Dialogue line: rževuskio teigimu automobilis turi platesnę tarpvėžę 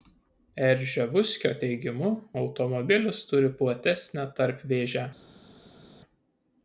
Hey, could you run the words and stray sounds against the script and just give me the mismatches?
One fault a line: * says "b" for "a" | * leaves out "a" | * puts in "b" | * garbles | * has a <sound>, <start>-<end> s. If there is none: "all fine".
all fine